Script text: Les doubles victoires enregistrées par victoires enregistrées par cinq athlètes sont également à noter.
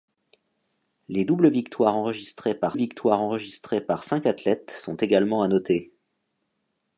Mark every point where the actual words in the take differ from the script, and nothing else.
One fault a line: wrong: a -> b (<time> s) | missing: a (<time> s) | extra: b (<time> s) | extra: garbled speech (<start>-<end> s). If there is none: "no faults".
no faults